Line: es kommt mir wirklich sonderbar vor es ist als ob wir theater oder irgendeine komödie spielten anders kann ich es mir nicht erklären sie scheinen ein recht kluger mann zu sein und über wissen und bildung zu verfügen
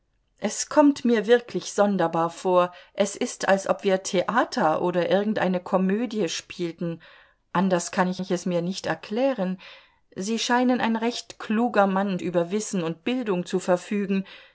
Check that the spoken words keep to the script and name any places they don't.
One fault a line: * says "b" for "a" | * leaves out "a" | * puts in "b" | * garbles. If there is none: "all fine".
* puts in "ich"
* leaves out "zu sein und"